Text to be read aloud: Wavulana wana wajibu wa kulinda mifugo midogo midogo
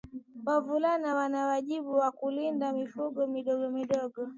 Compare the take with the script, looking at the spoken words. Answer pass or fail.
pass